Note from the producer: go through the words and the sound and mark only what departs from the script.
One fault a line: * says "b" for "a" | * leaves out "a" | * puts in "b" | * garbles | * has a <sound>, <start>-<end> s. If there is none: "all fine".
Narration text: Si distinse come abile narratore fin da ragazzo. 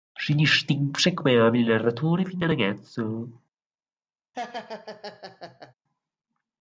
* has a laugh, 4.3-5.7 s